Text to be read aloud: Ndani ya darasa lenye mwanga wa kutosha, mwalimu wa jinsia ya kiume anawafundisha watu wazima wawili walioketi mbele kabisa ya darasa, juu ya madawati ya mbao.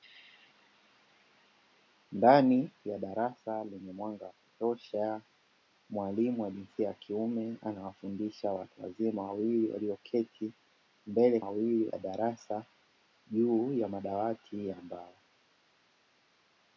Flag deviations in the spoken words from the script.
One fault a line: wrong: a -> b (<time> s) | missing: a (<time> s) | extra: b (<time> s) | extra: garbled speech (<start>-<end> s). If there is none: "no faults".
wrong: kabisa -> wawili (11.4 s)